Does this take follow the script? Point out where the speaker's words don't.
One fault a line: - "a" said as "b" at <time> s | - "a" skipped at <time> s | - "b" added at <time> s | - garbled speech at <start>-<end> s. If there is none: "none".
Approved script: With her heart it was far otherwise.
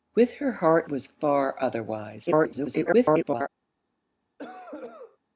- "it" skipped at 0.9 s
- garbled speech at 2.3-3.5 s